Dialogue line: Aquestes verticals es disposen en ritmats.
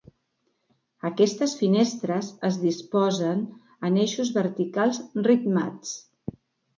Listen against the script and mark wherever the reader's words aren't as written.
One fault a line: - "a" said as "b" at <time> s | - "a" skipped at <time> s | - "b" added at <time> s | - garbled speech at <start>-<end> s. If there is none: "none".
- "verticals" said as "finestres" at 1.6 s
- "eixos verticals" added at 4.1 s